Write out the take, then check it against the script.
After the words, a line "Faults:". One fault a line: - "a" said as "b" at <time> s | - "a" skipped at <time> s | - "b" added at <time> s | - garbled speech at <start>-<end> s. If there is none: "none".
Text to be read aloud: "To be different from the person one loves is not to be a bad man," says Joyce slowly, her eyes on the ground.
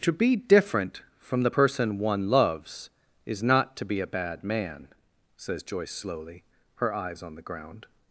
"To be different from the person one loves is not to be a bad man," says Joyce slowly, her eyes on the ground.
Faults:
none